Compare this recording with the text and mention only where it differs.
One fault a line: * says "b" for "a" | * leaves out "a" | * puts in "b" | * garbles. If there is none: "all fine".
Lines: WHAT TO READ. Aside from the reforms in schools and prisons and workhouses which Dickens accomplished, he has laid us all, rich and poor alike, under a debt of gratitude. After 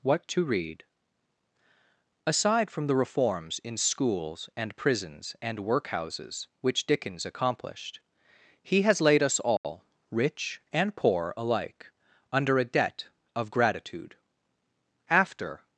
all fine